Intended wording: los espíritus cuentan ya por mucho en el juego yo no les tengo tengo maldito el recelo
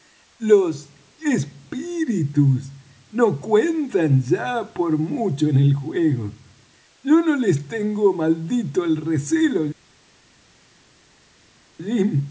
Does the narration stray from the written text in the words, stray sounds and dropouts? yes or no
yes